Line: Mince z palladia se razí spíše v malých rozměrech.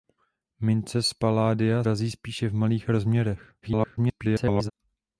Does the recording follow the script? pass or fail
fail